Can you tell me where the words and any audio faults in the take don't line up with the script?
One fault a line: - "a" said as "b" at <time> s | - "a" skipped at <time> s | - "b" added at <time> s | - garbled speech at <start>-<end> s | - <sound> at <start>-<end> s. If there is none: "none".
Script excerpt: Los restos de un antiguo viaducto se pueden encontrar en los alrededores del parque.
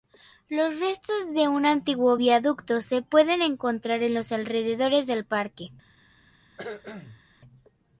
- cough at 6.6-7.2 s